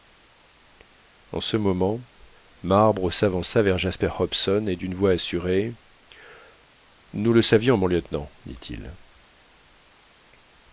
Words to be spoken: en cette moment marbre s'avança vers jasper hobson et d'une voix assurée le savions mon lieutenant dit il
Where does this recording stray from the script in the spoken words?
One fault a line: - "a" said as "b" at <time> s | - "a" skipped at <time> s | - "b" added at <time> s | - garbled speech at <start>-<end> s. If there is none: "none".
- "cette" said as "ce" at 1.4 s
- "nous" added at 7.1 s